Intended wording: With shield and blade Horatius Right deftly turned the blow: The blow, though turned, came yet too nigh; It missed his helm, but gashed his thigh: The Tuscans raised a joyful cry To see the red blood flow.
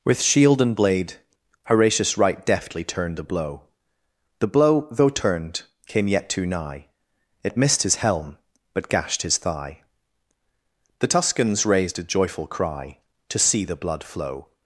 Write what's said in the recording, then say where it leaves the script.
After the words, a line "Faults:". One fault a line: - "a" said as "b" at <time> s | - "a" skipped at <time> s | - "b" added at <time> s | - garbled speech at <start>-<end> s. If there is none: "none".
With shield and blade Horatius Right deftly turned the blow: The blow, though turned, came yet too nigh; It missed his helm, but gashed his thigh: The Tuscans raised a joyful cry To see the blood flow.
Faults:
- "red" skipped at 13.7 s